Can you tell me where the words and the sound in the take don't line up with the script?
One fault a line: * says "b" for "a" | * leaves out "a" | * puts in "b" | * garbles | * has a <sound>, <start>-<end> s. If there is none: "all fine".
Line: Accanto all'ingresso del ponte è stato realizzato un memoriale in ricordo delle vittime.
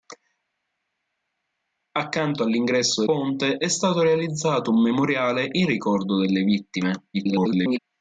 * leaves out "del"
* garbles